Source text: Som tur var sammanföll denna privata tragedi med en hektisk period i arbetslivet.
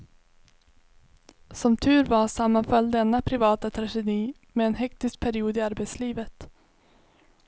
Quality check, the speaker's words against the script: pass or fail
pass